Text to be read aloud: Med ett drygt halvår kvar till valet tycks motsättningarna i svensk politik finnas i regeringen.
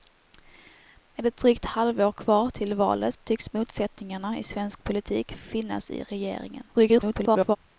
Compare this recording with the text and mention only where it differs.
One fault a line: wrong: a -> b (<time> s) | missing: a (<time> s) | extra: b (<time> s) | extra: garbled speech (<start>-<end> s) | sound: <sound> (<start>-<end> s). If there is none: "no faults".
extra: garbled speech (6.7-7.6 s)